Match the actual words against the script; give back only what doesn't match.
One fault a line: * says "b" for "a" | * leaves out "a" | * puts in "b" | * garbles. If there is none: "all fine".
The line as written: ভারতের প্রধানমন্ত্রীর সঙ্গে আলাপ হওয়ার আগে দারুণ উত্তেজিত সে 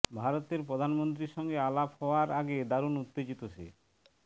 all fine